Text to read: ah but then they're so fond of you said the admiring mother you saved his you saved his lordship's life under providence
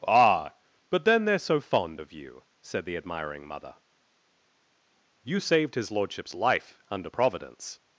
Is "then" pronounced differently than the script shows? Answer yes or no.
no